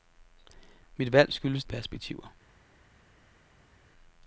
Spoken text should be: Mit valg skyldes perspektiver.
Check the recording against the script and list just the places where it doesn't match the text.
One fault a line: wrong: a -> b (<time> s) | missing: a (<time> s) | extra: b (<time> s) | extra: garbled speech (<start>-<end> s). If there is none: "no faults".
no faults